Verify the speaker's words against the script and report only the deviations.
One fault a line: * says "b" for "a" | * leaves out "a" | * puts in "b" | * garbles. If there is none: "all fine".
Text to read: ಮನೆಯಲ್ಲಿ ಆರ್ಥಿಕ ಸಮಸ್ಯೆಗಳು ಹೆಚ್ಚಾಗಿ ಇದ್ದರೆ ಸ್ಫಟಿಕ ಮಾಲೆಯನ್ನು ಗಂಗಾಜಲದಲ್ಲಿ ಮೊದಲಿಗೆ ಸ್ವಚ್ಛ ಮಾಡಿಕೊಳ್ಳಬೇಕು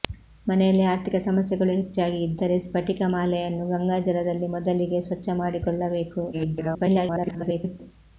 * garbles